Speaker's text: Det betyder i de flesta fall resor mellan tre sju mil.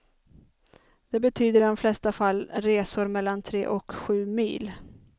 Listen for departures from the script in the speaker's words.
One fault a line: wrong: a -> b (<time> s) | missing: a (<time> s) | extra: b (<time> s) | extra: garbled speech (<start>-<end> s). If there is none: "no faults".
extra: och (3.7 s)